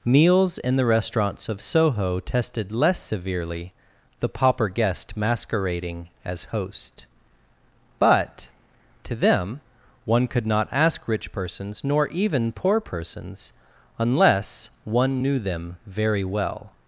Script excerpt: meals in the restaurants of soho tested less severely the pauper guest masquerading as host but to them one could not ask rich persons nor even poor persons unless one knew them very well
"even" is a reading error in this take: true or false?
false